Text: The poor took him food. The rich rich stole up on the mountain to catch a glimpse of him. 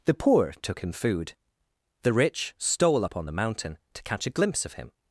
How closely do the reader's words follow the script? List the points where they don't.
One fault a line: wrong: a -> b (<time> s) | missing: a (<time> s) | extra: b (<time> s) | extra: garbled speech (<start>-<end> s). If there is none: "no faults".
missing: rich (2.5 s)